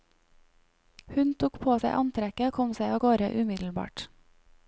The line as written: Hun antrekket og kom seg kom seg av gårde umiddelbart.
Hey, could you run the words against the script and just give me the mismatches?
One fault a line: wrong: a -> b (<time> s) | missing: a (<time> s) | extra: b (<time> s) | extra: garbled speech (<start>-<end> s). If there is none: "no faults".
extra: tok på seg (1.4 s)
missing: kom seg (2.9 s)